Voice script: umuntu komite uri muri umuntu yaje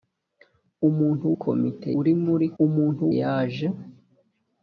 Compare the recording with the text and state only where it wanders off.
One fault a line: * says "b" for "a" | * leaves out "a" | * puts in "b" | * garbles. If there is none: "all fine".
all fine